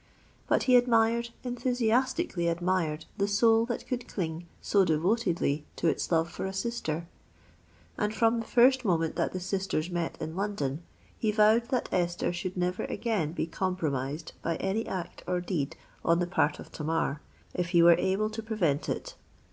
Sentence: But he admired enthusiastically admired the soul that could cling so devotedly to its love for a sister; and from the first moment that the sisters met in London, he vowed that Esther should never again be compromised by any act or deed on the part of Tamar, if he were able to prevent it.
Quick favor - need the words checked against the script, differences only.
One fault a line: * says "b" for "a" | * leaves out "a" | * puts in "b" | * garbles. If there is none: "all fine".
all fine